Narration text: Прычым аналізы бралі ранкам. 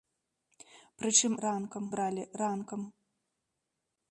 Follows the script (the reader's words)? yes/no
no